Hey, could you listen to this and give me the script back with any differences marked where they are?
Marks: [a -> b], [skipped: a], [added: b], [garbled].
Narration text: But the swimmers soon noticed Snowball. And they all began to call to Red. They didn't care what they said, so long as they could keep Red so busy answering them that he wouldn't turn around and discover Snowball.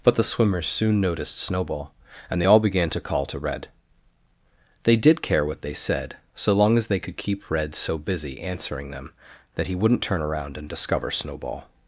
But the swimmers soon noticed Snowball. And they all began to call to Red. They [didn't -> did] care what they said, so long as they could keep Red so busy answering them that he wouldn't turn around and discover Snowball.